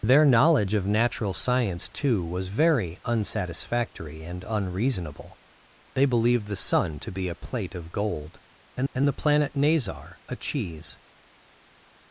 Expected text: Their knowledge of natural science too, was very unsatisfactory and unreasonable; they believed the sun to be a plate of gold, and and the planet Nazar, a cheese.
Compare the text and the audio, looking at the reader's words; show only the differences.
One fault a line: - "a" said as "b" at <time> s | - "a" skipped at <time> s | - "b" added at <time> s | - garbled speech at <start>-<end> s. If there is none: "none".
none